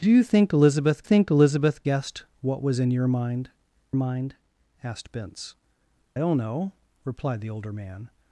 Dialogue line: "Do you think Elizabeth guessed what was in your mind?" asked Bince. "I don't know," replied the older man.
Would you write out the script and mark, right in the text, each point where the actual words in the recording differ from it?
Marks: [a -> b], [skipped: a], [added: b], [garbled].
"Do you think Elizabeth [added: think Elizabeth] guessed what was in your mind?" [added: mind] asked Bince. [skipped: "I] don't know," replied the older man.